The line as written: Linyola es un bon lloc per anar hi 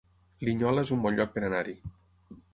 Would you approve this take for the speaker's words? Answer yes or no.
yes